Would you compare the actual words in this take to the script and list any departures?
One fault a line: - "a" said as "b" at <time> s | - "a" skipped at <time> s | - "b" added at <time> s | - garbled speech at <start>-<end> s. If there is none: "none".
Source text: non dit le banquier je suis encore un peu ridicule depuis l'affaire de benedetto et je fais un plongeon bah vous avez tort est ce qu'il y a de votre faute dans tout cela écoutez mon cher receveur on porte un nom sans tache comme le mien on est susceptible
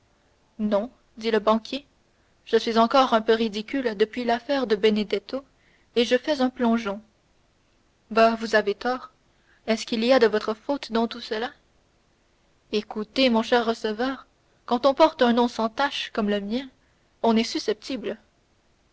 - "quand" added at 14.7 s